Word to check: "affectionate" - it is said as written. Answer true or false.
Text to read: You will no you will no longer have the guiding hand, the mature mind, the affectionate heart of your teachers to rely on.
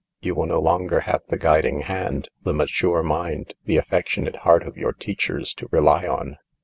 true